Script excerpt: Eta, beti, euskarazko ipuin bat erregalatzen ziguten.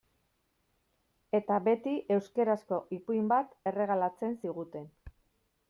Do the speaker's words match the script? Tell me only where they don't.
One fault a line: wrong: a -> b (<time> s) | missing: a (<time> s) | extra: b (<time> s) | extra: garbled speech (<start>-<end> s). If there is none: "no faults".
no faults